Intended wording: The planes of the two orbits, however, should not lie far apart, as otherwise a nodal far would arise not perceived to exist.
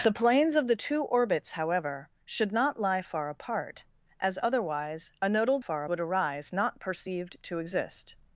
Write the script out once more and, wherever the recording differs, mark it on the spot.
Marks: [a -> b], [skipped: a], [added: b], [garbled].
The planes of the two orbits, however, should not lie far apart, as otherwise a nodal far would arise not perceived to exist.